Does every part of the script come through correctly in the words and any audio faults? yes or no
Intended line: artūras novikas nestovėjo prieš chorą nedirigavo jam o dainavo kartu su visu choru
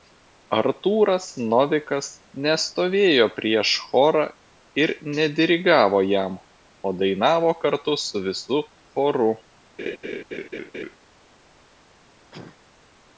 no